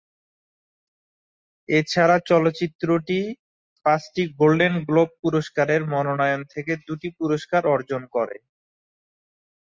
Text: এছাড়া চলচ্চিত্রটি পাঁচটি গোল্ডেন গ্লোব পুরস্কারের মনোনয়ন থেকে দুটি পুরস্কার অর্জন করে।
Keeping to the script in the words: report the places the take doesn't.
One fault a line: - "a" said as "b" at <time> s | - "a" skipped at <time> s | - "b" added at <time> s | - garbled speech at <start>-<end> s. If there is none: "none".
none